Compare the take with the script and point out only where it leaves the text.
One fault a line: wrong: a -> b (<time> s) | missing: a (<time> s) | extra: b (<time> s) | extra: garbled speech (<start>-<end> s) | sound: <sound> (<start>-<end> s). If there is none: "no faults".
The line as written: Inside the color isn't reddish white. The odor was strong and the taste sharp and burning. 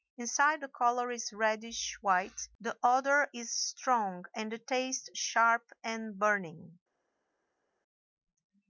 wrong: isn't -> is (1.1 s)
wrong: was -> is (3.3 s)